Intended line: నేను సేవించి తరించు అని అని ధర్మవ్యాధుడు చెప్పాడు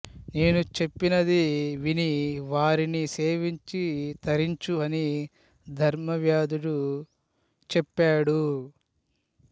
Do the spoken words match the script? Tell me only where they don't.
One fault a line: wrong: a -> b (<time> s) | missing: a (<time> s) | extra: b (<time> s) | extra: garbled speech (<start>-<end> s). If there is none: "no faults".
extra: చెప్పినది విని వారిని (0.8 s)
missing: అని (5.0 s)